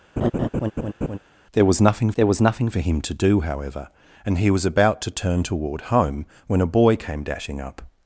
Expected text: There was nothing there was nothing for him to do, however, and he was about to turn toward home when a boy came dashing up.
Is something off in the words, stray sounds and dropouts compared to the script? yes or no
yes